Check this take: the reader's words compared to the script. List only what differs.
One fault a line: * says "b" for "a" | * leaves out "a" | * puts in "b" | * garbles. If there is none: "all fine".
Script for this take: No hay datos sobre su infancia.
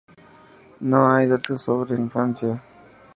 * leaves out "su"